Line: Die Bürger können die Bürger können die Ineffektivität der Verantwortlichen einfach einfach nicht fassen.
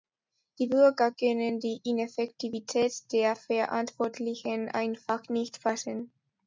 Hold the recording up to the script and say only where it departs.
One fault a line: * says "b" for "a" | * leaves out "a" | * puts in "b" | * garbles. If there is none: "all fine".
* leaves out "Bürger können die"
* leaves out "einfach"